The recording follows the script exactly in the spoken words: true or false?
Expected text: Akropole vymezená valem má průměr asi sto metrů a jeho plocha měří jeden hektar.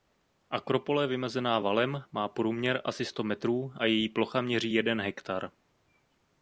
false